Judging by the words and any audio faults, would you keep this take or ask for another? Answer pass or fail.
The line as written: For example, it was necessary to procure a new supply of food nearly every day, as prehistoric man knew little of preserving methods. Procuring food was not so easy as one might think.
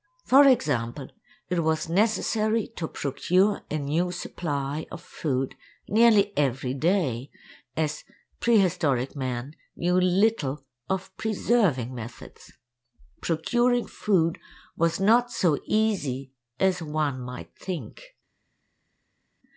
pass